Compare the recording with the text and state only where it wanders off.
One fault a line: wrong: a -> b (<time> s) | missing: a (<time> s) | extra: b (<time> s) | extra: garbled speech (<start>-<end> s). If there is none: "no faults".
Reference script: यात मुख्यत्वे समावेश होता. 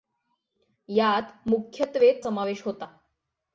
no faults